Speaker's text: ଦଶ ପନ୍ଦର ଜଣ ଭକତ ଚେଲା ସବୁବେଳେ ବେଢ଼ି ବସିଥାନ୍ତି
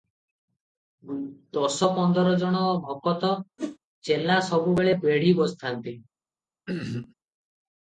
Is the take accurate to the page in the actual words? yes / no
yes